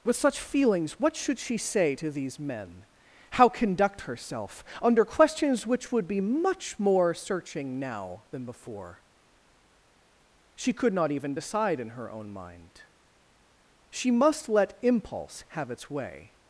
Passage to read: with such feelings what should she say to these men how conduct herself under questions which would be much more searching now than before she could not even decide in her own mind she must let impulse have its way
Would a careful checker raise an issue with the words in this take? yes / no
no